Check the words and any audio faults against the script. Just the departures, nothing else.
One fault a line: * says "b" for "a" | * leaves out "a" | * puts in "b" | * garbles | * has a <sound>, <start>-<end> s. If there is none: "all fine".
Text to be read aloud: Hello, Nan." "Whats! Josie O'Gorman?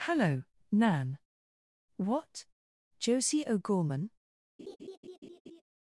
* says "What" for "Whats"
* has a laugh, 4.6-5.6 s